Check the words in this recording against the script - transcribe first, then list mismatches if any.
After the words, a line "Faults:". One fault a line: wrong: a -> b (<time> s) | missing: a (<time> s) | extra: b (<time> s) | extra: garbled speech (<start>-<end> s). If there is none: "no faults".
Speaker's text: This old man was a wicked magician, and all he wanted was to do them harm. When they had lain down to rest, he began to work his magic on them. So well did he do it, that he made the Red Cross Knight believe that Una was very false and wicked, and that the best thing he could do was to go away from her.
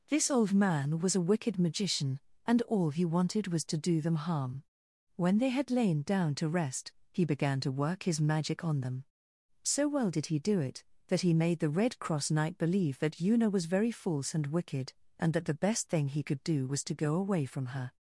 This old man was a wicked magician, and all he wanted was to do them harm. When they had lain down to rest, he began to work his magic on them. So well did he do it, that he made the Red Cross Knight believe that Una was very false and wicked, and that the best thing he could do was to go away from her.
Faults:
no faults